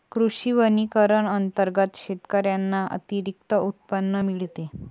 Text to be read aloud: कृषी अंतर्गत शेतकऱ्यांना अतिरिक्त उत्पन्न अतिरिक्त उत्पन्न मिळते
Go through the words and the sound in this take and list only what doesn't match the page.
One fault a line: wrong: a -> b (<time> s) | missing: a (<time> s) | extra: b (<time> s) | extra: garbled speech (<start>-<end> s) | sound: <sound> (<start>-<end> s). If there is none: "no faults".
extra: वनीकरण (0.5 s)
missing: अतिरिक्त उत्पन्न (4.2 s)